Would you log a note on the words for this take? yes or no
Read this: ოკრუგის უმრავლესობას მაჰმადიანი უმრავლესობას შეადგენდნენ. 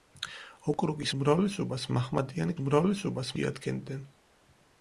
no